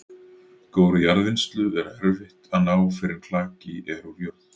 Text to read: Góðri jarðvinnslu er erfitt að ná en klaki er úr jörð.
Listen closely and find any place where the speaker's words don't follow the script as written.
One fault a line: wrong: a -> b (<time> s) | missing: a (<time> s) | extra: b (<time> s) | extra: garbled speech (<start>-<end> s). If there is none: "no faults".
extra: fyrr (3.0 s)